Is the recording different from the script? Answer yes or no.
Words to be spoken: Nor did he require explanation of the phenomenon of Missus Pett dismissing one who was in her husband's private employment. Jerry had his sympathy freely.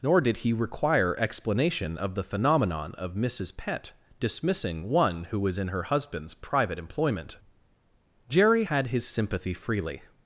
no